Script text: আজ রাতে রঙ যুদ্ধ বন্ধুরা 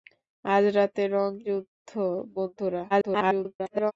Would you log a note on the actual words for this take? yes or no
yes